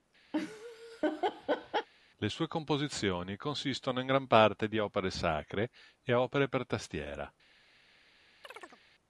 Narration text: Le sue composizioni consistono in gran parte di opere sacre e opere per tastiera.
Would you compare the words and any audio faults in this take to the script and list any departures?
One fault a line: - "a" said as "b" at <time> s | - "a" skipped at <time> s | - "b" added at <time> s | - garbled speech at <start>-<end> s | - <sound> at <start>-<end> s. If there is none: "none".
- laugh at 0.3-1.9 s
- chirp at 8.4-8.8 s